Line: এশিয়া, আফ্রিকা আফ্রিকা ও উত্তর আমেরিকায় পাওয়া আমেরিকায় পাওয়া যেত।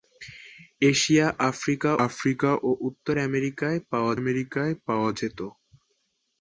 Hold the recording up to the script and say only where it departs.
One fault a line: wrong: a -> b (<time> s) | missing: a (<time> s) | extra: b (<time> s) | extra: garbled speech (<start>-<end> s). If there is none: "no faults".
no faults